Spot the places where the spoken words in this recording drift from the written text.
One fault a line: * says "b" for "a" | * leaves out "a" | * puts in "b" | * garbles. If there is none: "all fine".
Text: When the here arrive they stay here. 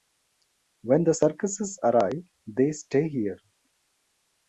* says "circuses" for "here"